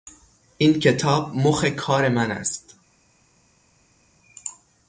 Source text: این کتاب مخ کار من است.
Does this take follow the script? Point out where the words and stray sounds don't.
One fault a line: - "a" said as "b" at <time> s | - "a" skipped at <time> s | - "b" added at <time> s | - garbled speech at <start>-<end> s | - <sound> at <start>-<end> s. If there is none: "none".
none